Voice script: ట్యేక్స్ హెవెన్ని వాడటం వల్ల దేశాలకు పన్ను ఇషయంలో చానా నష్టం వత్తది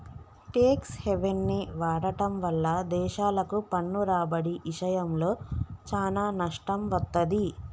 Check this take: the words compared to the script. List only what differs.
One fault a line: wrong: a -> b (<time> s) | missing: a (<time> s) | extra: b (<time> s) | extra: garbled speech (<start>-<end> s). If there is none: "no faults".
extra: రాబడి (4.0 s)